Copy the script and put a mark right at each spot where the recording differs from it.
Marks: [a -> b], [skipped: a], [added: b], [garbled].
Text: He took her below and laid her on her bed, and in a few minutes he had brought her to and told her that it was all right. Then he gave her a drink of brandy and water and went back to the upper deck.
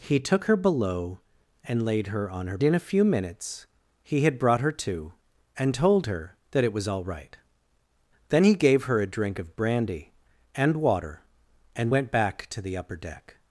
He took her below and laid her on her [skipped: bed, and] in a few minutes he had brought her to and told her that it was all right. Then he gave her a drink of brandy and water and went back to the upper deck.